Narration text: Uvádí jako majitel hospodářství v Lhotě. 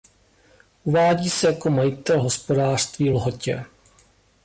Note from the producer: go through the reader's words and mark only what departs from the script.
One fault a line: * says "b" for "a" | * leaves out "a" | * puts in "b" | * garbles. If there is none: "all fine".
* puts in "se"